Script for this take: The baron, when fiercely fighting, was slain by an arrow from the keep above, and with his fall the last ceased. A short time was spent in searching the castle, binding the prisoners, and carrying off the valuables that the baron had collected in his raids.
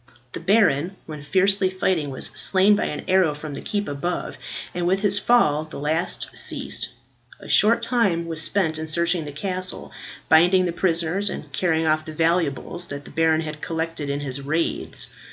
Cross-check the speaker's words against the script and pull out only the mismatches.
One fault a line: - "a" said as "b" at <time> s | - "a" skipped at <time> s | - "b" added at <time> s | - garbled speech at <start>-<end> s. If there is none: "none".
none